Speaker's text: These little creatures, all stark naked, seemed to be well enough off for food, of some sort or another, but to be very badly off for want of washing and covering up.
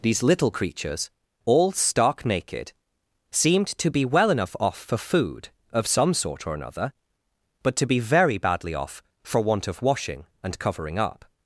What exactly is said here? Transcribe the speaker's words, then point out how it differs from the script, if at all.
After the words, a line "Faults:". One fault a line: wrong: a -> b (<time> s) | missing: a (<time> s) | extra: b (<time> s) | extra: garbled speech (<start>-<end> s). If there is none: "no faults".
These little creatures, all stark naked, seemed to be well enough off for food, of some sort or another, but to be very badly off for want of washing and covering up.
Faults:
no faults